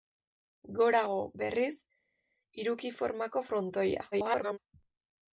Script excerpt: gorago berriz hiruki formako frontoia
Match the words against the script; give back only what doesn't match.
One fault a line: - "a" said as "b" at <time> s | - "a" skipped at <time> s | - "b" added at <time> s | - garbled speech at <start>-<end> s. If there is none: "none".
- garbled speech at 4.1-4.6 s